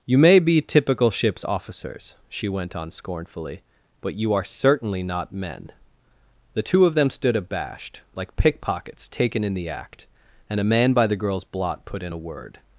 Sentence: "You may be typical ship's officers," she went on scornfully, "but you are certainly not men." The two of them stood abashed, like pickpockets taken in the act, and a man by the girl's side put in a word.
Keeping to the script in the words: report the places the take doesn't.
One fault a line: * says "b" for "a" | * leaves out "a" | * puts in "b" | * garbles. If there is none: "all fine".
* says "blot" for "side"